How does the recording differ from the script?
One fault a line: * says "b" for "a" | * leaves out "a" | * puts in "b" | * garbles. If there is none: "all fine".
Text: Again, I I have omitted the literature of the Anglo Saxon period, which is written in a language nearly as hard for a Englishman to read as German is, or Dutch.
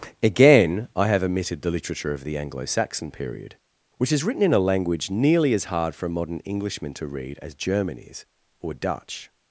* leaves out "I"
* puts in "modern"